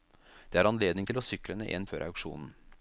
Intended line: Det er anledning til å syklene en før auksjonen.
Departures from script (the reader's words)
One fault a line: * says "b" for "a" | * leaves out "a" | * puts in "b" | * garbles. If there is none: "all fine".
all fine